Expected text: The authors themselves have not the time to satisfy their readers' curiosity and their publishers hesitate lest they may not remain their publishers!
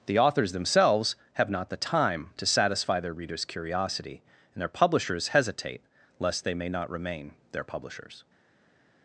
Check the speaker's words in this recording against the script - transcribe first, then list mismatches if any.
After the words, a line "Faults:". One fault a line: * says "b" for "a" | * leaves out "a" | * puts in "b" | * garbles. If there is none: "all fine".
The authors themselves have not the time to satisfy their readers' curiosity and their publishers hesitate lest they may not remain their publishers!
Faults:
all fine